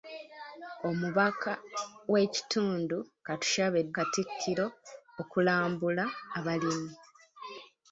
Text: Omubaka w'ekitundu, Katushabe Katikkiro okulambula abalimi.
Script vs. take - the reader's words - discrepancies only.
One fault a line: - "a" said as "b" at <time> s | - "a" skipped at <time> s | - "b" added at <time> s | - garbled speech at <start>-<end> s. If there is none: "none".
none